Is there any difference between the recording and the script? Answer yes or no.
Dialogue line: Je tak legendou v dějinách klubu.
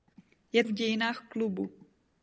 yes